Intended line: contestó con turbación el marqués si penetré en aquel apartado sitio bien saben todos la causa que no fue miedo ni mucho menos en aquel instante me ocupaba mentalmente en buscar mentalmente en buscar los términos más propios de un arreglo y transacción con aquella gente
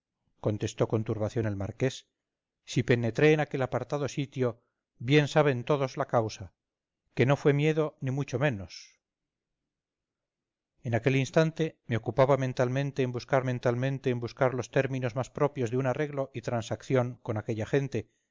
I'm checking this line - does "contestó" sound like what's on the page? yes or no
yes